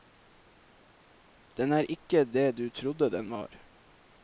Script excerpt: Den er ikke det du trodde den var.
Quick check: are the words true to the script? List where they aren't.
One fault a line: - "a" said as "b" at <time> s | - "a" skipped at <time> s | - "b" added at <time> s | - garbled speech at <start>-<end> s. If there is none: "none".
none